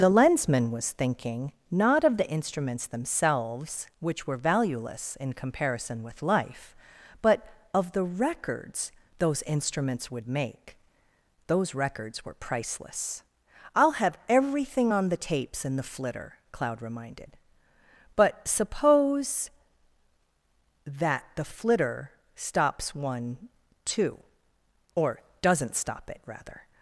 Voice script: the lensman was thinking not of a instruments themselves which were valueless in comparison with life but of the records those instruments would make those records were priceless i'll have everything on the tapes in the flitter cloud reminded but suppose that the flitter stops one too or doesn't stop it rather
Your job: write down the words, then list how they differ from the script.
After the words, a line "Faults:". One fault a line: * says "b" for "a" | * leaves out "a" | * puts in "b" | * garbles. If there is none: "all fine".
the lensman was thinking not of the instruments themselves which were valueless in comparison with life but of the records those instruments would make those records were priceless i'll have everything on the tapes in the flitter cloud reminded but suppose that the flitter stops one too or doesn't stop it rather
Faults:
* says "the" for "a"